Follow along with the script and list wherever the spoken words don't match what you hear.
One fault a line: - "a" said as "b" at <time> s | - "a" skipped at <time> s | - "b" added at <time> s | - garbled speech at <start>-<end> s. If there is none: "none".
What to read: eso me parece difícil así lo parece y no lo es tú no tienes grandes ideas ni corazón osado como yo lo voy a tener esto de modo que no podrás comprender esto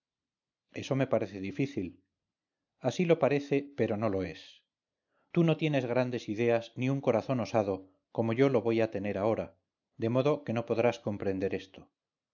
- "y" said as "pero" at 3.8 s
- "un" added at 6.9 s
- "esto" said as "ahora" at 9.2 s